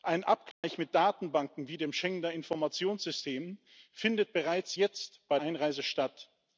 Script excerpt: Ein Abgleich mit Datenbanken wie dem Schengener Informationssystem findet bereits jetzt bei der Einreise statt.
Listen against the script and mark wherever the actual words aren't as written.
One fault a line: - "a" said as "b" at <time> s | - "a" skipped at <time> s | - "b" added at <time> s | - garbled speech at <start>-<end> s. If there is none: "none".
- "der" skipped at 5.4 s